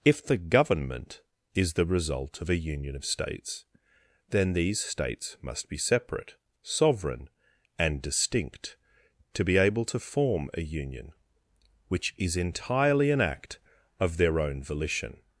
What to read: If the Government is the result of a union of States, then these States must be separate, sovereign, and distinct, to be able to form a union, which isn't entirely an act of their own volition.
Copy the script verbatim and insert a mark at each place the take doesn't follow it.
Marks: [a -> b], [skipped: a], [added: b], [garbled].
If the Government is the result of a union of States, then these States must be separate, sovereign, and distinct, to be able to form a union, which [isn't -> is] entirely an act of their own volition.